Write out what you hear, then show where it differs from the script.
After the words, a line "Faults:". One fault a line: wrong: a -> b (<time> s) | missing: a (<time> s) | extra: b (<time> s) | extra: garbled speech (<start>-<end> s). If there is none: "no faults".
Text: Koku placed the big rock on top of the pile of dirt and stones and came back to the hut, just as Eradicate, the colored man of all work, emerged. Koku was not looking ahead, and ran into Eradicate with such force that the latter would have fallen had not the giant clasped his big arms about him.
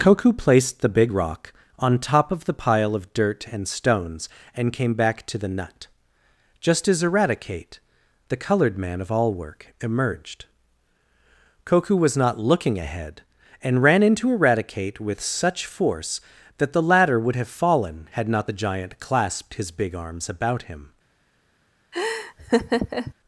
Koku placed the big rock on top of the pile of dirt and stones and came back to the nut, just as Eradicate, the colored man of all work, emerged. Koku was not looking ahead, and ran into Eradicate with such force that the latter would have fallen had not the giant clasped his big arms about him.
Faults:
wrong: hut -> nut (5.5 s)